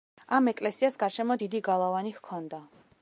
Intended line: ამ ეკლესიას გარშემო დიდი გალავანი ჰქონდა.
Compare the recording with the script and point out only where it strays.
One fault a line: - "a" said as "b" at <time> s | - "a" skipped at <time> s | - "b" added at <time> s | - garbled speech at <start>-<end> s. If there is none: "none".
none